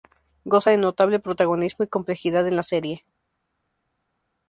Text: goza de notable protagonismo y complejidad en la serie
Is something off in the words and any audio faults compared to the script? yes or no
no